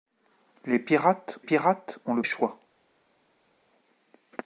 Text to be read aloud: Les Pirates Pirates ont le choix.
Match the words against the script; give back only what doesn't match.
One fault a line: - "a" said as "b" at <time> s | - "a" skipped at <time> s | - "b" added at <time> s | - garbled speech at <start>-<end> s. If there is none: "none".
none